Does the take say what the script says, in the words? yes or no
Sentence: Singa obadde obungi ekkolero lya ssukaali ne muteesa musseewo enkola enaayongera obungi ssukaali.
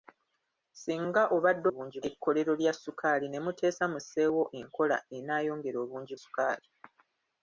yes